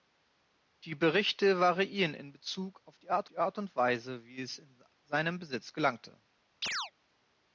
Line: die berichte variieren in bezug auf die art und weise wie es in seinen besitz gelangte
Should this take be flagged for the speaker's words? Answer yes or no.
yes